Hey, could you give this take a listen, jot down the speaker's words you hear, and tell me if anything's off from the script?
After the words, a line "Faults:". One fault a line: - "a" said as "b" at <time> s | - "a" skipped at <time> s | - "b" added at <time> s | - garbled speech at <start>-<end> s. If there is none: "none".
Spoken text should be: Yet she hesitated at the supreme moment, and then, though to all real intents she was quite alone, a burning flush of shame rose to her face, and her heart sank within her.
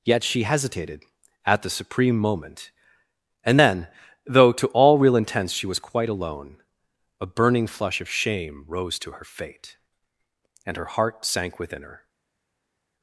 Yet she hesitated at the supreme moment, and then, though to all real intents she was quite alone, a burning flush of shame rose to her fate, and her heart sank within her.
Faults:
- "face" said as "fate" at 9.3 s